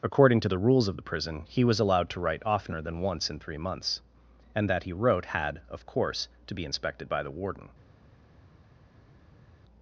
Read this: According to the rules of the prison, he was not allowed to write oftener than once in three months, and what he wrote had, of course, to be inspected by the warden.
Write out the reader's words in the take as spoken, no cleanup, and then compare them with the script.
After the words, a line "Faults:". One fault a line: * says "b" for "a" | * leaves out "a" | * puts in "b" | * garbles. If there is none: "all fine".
According to the rules of the prison, he was allowed to write oftener than once in three months, and that he wrote had, of course, to be inspected by the warden.
Faults:
* leaves out "not"
* says "that" for "what"